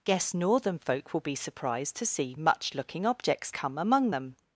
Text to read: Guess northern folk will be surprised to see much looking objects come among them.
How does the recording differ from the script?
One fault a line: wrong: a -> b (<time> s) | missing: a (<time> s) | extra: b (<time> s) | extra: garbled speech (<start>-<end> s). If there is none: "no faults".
no faults